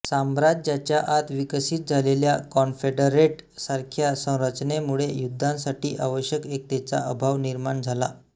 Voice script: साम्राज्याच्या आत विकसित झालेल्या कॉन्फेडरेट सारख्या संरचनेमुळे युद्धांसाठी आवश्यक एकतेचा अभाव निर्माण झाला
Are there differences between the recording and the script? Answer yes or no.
no